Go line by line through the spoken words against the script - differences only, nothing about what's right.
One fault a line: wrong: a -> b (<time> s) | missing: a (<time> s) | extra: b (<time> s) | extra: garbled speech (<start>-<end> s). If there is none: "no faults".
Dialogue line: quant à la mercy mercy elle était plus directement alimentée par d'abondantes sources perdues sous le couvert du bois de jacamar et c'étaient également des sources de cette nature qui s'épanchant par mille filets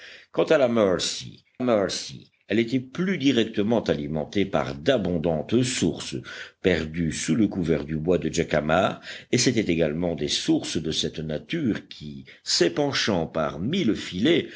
no faults